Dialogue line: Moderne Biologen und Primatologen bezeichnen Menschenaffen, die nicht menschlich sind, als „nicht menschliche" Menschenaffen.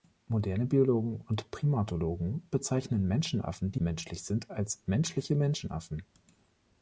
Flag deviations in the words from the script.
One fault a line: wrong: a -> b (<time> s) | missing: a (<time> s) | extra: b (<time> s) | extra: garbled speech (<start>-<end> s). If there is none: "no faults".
missing: nicht (3.8 s)
missing: nicht (4.8 s)